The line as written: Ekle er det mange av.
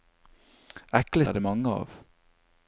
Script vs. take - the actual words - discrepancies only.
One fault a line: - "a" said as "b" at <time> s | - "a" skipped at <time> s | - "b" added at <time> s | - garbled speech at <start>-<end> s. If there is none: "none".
none